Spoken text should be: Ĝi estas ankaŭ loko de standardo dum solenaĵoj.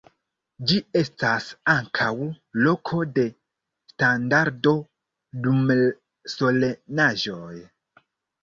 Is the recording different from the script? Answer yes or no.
no